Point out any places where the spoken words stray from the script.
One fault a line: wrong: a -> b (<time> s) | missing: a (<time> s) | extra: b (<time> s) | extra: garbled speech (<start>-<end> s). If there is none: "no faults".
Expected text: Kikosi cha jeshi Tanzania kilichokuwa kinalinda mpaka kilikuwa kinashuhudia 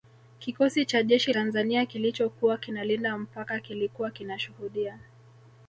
no faults